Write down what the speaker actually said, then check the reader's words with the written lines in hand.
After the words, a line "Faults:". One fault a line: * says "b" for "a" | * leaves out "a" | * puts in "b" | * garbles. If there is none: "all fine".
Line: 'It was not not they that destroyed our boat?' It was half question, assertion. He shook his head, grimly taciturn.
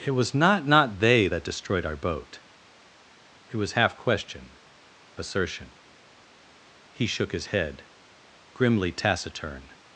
'It was not not they that destroyed our boat?' It was half question, assertion. He shook his head, grimly taciturn.
Faults:
all fine